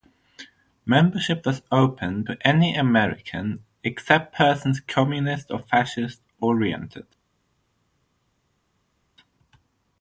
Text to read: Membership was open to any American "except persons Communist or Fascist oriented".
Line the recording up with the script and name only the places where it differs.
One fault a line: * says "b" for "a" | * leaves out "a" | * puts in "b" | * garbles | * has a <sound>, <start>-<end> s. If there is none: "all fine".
all fine